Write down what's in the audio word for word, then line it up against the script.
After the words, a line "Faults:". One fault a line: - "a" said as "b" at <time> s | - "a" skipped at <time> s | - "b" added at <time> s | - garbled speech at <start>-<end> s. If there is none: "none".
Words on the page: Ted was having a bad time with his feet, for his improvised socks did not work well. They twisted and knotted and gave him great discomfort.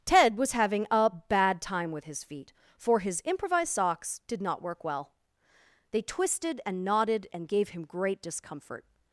Ted was having a bad time with his feet, for his improvised socks did not work well. They twisted and knotted and gave him great discomfort.
Faults:
none